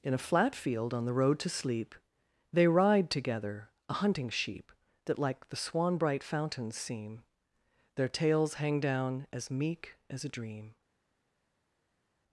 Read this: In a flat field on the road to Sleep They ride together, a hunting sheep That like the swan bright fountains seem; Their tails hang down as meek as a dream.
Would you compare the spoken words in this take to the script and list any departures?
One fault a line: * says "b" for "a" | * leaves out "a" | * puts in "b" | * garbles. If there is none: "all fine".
all fine